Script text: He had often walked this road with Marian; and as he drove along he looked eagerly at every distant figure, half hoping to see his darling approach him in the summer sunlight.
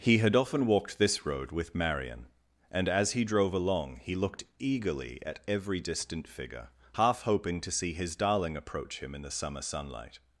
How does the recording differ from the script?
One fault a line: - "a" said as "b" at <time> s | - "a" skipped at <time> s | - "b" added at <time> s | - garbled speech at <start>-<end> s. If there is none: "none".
none